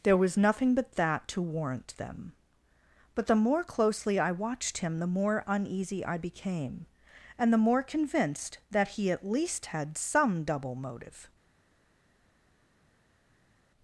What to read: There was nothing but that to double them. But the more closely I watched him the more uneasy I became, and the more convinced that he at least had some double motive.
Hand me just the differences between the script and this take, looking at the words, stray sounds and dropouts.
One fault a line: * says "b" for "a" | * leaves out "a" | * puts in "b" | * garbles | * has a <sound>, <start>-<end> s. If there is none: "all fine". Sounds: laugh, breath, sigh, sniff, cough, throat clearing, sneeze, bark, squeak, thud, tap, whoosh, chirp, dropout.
* says "warrant" for "double"